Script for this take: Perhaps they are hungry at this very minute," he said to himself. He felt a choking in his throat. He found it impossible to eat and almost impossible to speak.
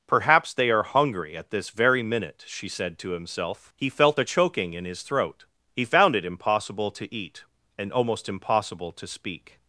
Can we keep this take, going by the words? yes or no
no